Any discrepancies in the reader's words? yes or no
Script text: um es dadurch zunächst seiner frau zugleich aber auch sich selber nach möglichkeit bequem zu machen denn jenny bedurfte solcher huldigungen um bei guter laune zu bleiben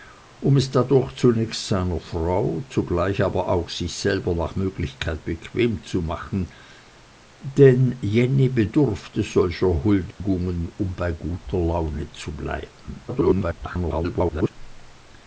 yes